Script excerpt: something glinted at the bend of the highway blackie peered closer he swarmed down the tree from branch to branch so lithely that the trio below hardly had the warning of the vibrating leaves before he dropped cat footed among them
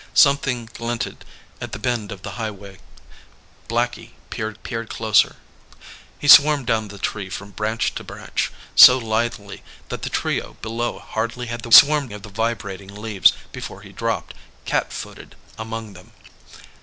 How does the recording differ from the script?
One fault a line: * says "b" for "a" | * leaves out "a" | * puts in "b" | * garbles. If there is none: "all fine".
* puts in "peered"
* says "swarmed" for "warning"